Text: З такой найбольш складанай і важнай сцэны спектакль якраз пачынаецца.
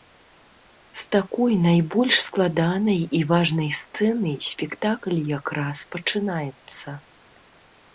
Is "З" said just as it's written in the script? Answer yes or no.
yes